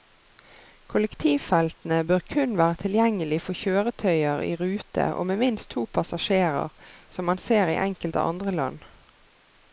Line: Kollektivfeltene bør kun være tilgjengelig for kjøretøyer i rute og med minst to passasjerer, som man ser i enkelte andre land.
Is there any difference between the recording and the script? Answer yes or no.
no